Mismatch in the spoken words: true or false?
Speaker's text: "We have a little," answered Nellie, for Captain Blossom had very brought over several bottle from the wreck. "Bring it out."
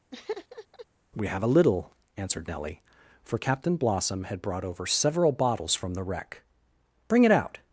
true